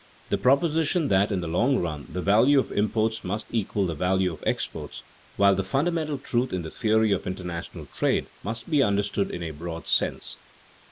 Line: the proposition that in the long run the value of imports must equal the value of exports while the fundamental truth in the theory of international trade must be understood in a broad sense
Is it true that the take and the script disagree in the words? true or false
false